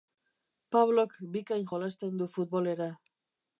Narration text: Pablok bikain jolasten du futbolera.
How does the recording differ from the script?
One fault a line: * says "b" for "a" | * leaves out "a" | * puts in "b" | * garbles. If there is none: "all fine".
all fine